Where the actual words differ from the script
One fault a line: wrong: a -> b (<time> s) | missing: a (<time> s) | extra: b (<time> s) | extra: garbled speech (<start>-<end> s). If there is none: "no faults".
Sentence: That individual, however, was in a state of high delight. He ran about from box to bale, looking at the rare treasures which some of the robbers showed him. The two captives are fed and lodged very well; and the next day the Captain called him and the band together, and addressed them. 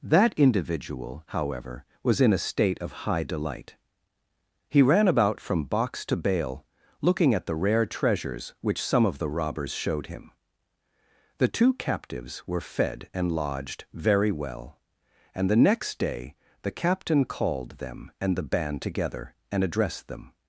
wrong: are -> were (12.5 s)
wrong: him -> them (17.7 s)